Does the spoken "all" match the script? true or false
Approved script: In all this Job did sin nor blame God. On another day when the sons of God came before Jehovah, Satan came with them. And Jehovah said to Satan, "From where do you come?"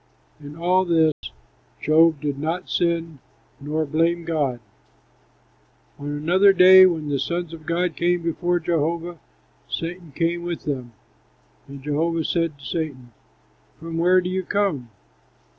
true